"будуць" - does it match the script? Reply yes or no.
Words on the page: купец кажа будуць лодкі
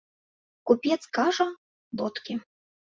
no